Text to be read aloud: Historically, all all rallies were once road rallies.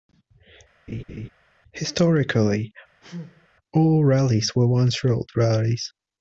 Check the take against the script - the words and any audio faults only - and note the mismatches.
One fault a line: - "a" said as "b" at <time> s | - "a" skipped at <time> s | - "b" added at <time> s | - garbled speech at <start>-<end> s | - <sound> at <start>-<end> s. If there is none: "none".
- laugh at 0.9-1.3 s
- sneeze at 3.0-3.5 s
- "all" skipped at 4.0 s